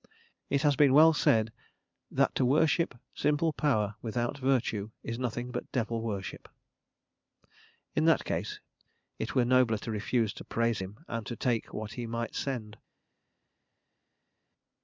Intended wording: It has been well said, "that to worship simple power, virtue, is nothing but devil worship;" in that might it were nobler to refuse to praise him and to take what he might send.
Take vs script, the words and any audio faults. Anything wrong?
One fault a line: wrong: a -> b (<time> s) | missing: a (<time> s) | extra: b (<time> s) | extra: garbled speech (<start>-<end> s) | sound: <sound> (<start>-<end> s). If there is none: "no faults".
extra: without (4.0 s)
wrong: might -> case (8.2 s)